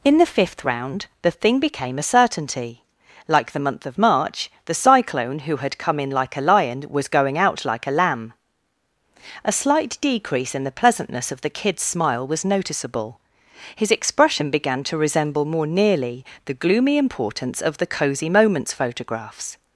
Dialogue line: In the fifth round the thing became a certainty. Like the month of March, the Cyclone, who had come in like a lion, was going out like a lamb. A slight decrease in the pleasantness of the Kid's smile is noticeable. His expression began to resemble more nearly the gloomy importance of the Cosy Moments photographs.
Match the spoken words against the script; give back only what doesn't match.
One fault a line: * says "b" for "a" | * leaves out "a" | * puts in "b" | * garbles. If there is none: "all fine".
* says "was" for "is"